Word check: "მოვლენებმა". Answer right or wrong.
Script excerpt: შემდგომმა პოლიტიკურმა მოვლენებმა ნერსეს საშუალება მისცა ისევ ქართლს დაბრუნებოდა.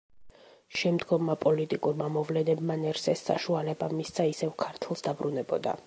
right